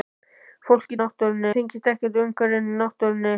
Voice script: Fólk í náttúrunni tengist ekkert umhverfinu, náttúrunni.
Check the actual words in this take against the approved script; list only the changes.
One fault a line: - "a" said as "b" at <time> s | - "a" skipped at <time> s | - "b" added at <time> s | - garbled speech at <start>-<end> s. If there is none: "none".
none